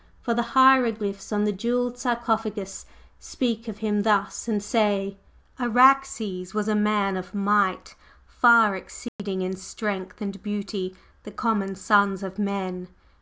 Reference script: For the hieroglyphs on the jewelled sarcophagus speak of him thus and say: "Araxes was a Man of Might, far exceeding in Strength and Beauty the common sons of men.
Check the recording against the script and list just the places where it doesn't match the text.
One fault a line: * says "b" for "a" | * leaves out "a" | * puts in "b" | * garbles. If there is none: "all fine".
all fine